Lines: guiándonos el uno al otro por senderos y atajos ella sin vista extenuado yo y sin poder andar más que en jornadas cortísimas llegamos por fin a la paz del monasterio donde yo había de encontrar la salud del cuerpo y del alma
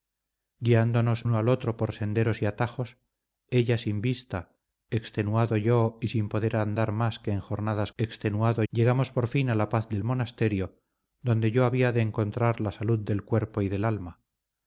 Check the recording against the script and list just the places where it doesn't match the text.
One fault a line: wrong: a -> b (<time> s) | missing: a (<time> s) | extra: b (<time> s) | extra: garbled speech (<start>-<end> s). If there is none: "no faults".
missing: el (1.3 s)
wrong: cortísimas -> extenuado (8.0 s)